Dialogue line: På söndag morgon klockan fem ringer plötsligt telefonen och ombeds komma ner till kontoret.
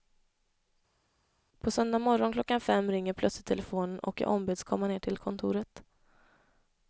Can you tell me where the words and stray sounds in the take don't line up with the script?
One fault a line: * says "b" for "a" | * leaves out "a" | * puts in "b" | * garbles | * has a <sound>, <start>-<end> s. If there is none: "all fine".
* puts in "jag"